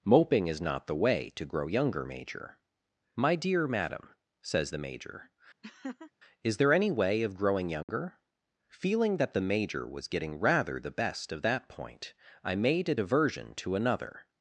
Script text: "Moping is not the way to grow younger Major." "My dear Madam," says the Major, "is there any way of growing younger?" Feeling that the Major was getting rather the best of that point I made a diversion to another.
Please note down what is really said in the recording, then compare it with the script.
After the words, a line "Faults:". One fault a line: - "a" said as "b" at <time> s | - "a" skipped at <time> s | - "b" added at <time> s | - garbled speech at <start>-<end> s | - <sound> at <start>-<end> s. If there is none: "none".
"Moping is not the way to grow younger Major." "My dear Madam," says the Major, "is there any way of growing younger?" Feeling that the Major was getting rather the best of that point I made a diversion to another.
Faults:
- laugh at 5.6-6.1 s
- dropout at 7.8-7.9 s